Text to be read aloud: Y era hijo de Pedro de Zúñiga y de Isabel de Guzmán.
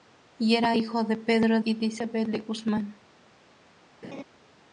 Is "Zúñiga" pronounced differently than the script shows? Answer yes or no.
yes